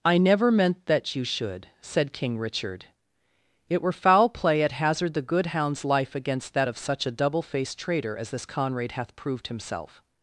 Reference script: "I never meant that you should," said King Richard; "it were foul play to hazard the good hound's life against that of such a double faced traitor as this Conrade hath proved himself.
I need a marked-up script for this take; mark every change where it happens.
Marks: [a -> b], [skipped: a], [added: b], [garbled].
"I never meant that you should," said King Richard; "it were foul play [to -> at] hazard the good hound's life against that of such a double faced traitor as this Conrade hath proved himself.